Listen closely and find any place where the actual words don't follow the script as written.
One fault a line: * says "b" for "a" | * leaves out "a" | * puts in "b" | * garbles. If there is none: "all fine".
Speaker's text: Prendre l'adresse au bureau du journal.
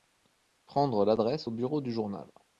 all fine